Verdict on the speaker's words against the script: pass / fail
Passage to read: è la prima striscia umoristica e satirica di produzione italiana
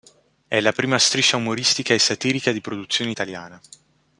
pass